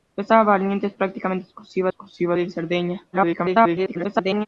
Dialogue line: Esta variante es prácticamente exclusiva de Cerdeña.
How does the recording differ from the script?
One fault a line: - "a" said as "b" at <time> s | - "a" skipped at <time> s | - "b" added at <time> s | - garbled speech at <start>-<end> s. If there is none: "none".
- "exclusiva" added at 1.9 s
- garbled speech at 3.1-4.5 s